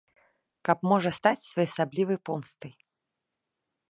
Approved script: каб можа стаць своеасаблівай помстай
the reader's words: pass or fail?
pass